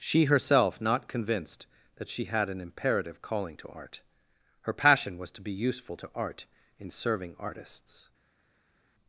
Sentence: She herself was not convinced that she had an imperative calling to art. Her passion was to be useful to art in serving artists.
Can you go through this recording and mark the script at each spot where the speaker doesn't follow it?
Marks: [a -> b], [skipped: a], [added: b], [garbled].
She herself [skipped: was] not convinced that she had an imperative calling to art. Her passion was to be useful to art in serving artists.